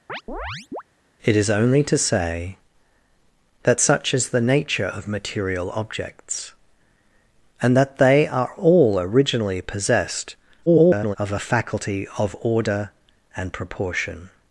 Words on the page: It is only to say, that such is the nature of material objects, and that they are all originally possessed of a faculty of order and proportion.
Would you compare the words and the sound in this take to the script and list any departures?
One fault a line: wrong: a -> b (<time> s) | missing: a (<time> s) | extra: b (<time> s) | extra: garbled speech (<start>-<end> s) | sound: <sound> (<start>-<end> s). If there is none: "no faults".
sound: chirp (0.1-0.8 s)
extra: garbled speech (10.7-11.2 s)